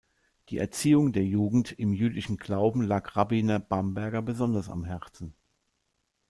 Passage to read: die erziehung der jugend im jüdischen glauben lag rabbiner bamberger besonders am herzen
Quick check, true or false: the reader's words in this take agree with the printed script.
true